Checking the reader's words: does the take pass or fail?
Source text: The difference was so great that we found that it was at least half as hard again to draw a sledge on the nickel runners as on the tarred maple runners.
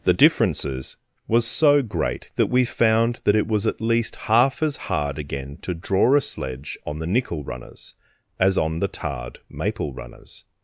fail